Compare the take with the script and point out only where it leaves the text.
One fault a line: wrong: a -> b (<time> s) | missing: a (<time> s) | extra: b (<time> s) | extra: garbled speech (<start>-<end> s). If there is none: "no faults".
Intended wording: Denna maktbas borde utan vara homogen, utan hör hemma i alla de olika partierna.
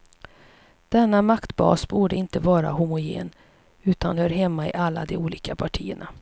wrong: utan -> inte (2.1 s)